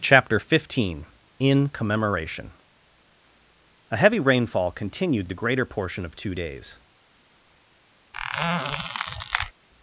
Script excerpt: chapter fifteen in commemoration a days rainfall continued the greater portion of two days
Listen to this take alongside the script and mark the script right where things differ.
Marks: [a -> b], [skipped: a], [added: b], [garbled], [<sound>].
chapter fifteen in commemoration a [days -> heavy] rainfall continued the greater portion of two days [squeak]